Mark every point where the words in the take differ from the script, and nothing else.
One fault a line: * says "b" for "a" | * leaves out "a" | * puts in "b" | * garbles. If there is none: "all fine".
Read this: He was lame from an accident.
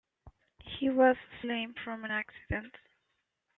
all fine